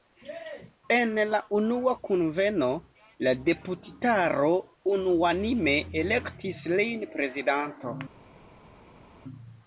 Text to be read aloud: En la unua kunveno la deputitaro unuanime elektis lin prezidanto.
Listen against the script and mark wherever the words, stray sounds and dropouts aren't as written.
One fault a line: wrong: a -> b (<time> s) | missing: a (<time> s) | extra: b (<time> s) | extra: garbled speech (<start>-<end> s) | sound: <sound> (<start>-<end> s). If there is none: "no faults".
no faults